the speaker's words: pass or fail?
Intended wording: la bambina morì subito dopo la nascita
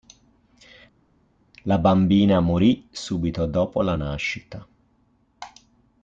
pass